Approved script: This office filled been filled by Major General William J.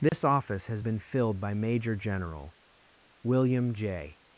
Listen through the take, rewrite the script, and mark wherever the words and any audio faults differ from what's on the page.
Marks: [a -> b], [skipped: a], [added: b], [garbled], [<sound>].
This [dropout] office [filled -> has] been filled by Major General William J.